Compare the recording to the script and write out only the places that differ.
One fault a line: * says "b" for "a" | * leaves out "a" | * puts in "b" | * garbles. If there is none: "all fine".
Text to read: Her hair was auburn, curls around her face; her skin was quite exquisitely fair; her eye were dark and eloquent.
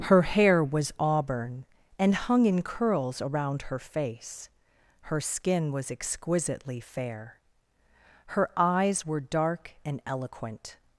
* puts in "and hung in"
* leaves out "quite"
* says "eyes" for "eye"